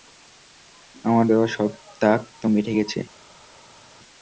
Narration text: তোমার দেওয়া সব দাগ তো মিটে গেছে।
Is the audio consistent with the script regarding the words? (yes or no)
no